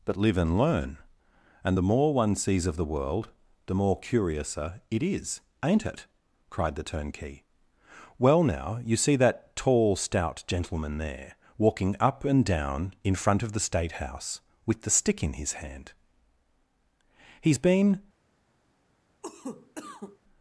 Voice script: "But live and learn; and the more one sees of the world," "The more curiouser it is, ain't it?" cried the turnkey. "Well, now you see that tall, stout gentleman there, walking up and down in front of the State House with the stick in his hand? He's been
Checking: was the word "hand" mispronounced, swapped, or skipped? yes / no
no